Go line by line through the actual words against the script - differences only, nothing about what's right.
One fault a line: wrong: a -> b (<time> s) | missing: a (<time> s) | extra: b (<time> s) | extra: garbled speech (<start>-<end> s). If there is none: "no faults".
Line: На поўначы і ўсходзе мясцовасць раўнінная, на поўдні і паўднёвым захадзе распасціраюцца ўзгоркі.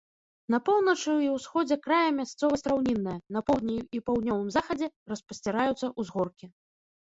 extra: края (1.9 s)